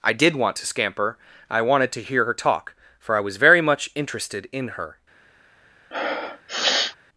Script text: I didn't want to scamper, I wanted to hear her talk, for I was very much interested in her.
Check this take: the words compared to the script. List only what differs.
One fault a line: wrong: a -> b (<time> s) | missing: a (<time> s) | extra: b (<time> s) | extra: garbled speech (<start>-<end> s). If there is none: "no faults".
wrong: didn't -> did (0.1 s)